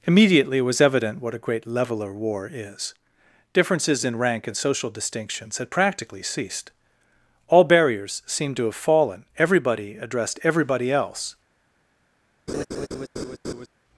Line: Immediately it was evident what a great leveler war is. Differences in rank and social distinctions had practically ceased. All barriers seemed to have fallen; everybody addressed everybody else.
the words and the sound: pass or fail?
fail